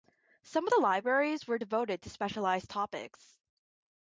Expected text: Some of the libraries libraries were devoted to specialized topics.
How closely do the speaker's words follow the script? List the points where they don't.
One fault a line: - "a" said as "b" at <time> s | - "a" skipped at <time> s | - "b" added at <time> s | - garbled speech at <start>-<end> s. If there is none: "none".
- "libraries" skipped at 1.4 s